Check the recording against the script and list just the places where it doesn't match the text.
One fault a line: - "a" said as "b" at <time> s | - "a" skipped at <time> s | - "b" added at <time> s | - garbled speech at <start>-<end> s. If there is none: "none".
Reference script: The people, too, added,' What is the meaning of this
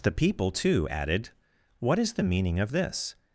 none